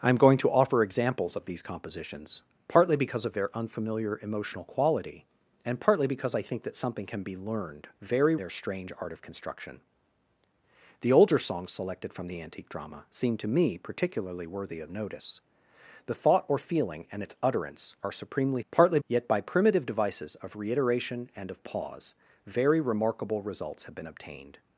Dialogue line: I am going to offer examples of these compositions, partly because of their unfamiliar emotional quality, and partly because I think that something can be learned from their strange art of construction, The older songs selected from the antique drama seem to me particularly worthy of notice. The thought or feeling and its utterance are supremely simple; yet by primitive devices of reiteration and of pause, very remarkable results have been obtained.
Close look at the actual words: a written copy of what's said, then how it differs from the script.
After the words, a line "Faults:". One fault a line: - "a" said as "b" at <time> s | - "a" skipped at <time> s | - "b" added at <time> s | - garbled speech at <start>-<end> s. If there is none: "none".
I am going to offer examples of these compositions, partly because of their unfamiliar emotional quality, and partly because I think that something can be learned very their strange art of construction, The older songs selected from the antique drama seem to me particularly worthy of notice. The thought or feeling and its utterance are supremely partly; yet by primitive devices of reiteration and of pause, very remarkable results have been obtained.
Faults:
- "from" said as "very" at 8.0 s
- "simple" said as "partly" at 18.7 s